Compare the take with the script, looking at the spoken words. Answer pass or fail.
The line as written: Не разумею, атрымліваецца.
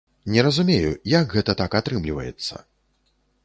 fail